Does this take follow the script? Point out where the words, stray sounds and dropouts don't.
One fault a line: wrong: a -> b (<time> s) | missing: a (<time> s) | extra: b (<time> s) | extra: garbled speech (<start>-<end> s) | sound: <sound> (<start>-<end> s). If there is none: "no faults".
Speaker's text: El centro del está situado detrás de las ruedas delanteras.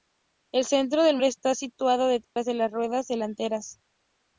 sound: dropout (2.2-2.4 s)